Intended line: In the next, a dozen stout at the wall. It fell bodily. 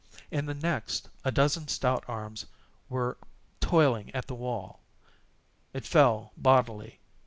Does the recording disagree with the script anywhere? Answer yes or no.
yes